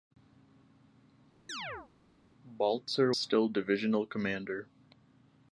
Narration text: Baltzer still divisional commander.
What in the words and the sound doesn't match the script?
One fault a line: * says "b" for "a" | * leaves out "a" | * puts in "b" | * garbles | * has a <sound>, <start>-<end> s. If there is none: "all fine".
* has a chirp, 1.5-1.9 s